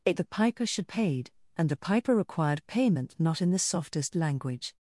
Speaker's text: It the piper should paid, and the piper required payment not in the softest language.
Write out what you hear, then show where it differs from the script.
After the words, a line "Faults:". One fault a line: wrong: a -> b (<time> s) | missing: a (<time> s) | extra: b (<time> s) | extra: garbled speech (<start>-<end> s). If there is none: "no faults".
It the piper should paid, and the piper required payment not in the softest language.
Faults:
no faults